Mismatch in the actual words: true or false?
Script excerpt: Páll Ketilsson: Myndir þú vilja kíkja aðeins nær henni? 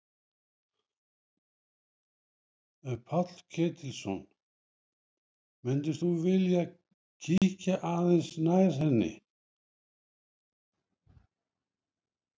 false